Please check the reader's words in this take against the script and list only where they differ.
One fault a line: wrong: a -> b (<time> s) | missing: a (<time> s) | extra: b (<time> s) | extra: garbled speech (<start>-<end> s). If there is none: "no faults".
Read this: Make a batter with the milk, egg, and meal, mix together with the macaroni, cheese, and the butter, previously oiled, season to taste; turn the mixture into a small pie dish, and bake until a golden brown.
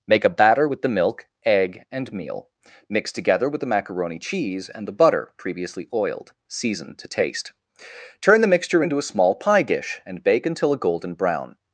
no faults